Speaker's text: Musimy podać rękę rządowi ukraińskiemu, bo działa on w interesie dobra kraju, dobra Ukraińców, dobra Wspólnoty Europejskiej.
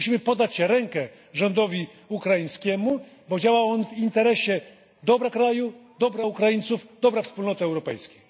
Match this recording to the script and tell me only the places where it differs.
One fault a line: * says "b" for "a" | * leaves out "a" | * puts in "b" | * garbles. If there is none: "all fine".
all fine